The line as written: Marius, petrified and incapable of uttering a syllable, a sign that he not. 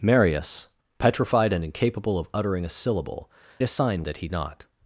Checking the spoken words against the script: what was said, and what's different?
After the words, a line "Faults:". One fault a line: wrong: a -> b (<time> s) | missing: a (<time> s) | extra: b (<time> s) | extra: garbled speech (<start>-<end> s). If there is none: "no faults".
Marius, petrified and incapable of uttering a syllable, a sign that he not.
Faults:
no faults